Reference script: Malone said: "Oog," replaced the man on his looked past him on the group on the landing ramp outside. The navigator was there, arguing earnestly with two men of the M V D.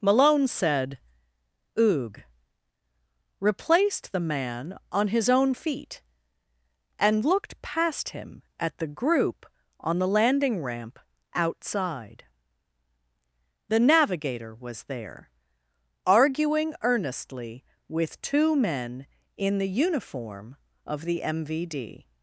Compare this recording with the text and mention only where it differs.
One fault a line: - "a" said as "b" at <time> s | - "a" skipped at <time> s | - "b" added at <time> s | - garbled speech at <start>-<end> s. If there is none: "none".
- "own feet and" added at 5.3 s
- "on" said as "at" at 8.6 s
- "in the uniform" added at 19.4 s